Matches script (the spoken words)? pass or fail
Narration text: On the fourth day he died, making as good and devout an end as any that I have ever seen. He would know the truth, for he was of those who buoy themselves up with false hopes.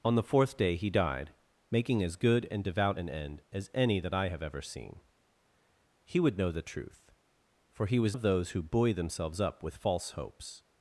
pass